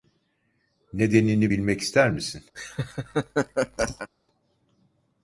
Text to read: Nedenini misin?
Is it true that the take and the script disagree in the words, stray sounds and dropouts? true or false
true